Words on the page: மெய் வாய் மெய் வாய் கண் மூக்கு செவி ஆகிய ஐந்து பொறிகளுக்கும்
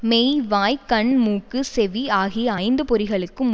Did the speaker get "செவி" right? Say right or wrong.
right